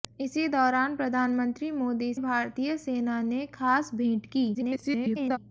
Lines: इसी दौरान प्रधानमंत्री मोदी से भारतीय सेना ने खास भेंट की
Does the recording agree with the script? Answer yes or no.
no